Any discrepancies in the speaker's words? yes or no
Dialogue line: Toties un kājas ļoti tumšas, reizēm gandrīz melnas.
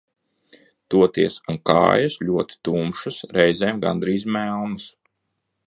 no